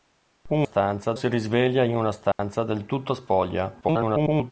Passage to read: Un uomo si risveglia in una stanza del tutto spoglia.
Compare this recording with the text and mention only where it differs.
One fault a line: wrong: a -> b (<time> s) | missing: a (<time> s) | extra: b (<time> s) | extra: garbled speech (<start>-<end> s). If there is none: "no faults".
wrong: uomo -> stanza (0.6 s)
extra: garbled speech (3.8-4.5 s)